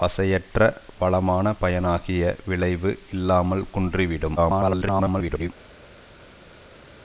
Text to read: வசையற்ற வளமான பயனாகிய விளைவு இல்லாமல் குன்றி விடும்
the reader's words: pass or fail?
fail